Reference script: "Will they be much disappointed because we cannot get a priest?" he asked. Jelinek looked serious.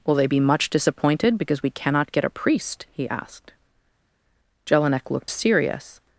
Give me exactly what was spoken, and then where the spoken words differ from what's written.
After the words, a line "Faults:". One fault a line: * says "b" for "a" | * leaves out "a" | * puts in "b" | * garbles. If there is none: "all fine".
"Will they be much disappointed because we cannot get a priest?" he asked. Jelinek looked serious.
Faults:
all fine